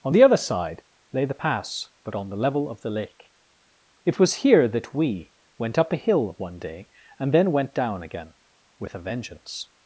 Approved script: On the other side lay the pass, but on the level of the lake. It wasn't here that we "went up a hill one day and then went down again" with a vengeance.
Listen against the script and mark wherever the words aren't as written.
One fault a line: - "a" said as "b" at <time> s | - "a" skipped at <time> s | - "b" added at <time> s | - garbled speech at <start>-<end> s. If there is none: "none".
- "wasn't" said as "was" at 4.2 s